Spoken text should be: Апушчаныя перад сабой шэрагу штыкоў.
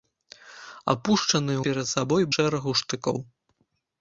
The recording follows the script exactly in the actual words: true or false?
true